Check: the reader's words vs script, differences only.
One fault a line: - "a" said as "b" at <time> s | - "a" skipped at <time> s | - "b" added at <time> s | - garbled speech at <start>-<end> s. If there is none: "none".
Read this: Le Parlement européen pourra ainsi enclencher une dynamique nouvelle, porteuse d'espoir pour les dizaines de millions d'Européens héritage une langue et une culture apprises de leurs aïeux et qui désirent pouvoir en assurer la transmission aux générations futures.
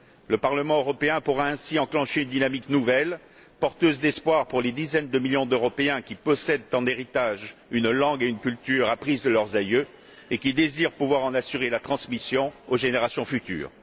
- "qui possèdent en" added at 6.0 s